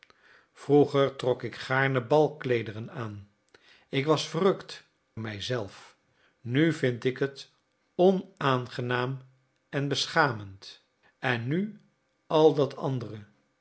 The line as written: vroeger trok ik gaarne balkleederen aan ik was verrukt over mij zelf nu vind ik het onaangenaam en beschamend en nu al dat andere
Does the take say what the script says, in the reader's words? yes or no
no